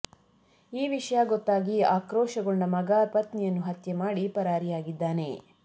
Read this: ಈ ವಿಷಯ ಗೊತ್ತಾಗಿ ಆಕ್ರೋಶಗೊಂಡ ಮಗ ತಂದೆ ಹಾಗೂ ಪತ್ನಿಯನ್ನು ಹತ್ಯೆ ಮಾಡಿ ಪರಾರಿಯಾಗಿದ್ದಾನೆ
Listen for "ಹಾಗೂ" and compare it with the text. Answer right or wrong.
wrong